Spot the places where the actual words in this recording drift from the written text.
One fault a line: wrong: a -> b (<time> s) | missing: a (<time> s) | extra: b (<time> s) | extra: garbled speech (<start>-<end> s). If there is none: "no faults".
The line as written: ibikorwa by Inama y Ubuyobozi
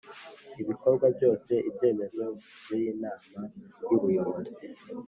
extra: byose ibyemezo (1.1 s)